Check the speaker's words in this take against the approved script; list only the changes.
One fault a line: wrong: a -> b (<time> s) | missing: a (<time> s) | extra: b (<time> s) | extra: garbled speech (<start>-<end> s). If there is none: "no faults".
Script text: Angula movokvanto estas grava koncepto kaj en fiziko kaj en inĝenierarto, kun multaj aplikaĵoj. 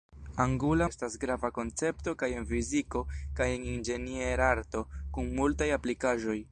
missing: movokvanto (0.8 s)